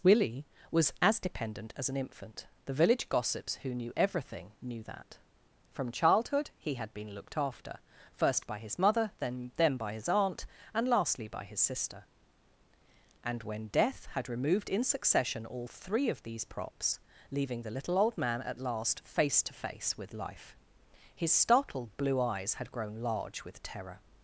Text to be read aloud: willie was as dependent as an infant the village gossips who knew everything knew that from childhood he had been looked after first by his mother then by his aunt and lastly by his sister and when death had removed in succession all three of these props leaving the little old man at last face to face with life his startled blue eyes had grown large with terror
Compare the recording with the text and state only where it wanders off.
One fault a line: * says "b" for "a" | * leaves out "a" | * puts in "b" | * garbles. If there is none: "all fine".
* puts in "then"